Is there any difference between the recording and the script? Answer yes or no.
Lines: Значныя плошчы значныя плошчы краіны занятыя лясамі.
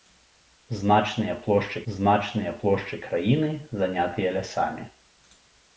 no